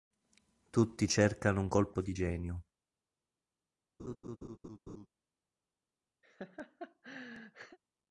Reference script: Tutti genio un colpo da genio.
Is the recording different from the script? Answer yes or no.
yes